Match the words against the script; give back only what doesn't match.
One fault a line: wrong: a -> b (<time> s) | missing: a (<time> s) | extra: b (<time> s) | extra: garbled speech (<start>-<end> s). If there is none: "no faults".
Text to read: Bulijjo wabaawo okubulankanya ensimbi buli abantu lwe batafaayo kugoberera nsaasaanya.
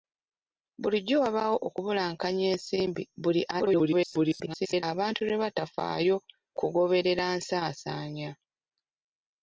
extra: garbled speech (3.5-4.8 s)